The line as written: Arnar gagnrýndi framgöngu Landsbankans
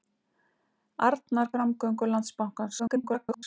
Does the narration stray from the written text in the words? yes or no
yes